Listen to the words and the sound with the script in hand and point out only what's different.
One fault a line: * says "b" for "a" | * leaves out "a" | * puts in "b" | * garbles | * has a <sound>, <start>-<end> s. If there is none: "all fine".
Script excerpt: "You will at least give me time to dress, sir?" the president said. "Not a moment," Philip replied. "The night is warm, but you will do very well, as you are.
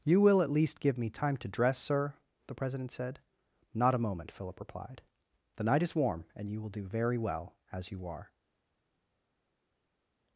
* says "and" for "but"